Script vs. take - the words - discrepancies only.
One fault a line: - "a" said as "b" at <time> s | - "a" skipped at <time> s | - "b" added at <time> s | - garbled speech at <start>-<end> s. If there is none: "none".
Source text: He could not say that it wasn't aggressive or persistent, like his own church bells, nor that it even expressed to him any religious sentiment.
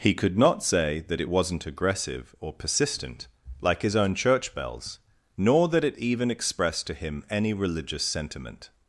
none